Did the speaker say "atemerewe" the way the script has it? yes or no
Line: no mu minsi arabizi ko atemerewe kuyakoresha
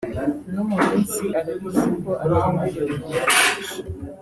yes